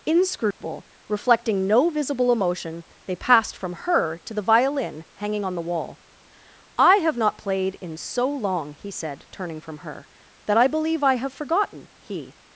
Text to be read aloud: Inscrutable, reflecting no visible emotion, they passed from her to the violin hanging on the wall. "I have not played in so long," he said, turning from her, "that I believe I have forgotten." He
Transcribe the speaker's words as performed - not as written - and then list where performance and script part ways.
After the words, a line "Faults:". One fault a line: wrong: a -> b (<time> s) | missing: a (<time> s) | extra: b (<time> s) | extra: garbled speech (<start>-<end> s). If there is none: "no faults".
Inscrutable, reflecting no visible emotion, they passed from her to the violin hanging on the wall. "I have not played in so long," he said, turning from her, "that I believe I have forgotten." He
Faults:
no faults